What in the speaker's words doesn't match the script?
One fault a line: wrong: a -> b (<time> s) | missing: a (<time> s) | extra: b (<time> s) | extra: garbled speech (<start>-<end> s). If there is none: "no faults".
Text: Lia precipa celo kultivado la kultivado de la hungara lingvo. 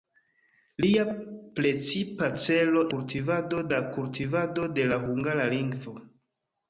no faults